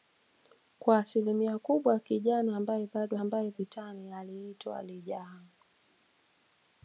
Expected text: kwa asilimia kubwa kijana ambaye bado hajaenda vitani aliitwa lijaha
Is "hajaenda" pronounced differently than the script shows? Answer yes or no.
yes